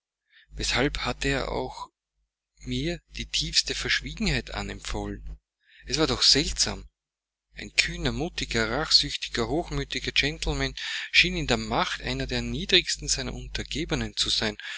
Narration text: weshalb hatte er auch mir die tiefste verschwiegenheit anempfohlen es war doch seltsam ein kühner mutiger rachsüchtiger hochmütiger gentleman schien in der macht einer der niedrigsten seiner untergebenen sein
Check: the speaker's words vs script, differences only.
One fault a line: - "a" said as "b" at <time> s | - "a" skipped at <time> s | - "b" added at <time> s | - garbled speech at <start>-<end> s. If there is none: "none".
- "zu" added at 14.2 s